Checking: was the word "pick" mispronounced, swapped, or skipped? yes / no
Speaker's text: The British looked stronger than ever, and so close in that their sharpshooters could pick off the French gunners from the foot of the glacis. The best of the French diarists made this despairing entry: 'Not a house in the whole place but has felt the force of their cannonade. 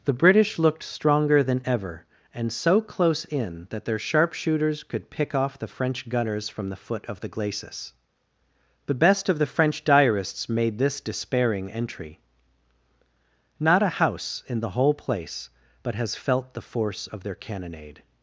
no